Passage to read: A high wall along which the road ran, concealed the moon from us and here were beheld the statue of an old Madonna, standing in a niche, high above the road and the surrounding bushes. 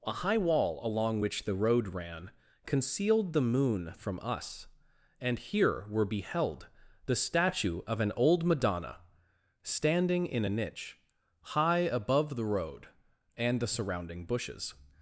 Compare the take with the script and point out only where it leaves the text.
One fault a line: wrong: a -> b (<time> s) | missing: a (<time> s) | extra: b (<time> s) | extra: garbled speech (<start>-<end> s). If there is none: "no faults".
no faults